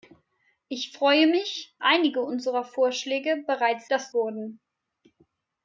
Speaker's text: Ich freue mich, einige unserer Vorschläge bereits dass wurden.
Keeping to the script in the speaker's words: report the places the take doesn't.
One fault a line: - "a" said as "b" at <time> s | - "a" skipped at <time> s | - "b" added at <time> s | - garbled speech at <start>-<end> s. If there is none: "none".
none